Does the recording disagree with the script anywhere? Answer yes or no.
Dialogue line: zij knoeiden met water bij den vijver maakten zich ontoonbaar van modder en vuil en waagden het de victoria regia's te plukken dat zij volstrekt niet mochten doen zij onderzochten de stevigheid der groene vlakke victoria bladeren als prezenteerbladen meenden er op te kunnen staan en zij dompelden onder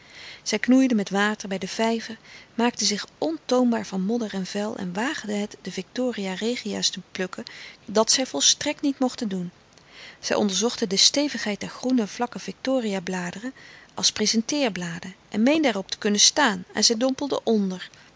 yes